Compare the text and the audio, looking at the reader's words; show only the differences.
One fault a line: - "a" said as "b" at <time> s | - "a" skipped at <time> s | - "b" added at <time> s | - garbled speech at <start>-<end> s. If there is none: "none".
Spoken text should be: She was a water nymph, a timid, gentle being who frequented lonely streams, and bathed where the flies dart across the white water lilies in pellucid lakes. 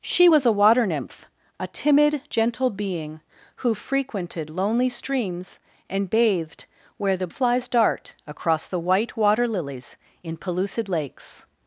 none